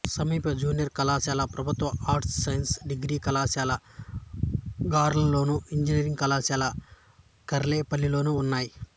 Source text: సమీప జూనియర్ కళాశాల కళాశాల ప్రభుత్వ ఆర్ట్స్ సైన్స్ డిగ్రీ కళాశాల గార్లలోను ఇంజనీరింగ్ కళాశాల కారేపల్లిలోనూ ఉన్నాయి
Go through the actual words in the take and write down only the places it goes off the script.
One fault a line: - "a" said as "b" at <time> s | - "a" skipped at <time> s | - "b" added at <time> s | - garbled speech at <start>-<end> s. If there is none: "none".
- "కళాశాల" skipped at 1.4 s